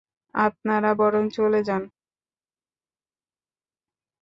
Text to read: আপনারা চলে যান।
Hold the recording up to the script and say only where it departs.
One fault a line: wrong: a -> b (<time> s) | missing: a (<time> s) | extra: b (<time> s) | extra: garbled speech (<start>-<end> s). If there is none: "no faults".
extra: বরং (1.0 s)